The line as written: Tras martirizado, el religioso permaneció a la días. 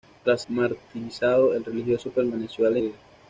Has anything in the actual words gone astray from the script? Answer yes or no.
no